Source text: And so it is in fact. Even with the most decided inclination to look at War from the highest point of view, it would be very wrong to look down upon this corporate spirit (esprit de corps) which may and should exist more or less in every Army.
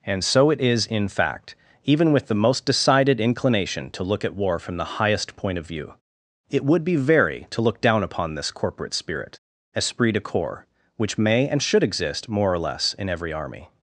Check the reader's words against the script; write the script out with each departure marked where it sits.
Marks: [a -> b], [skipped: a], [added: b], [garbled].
And so it is in fact. Even with the most decided inclination to look at War from the highest point of view, it would be very [skipped: wrong] to look down upon this corporate spirit (esprit de corps) which may and should exist more or less in every Army.